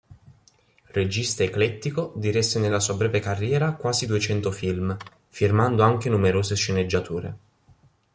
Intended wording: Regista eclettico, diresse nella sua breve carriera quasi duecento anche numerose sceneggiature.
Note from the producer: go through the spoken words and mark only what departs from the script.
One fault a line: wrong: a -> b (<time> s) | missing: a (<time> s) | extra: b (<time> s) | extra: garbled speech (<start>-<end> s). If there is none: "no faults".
extra: film firmando (4.5 s)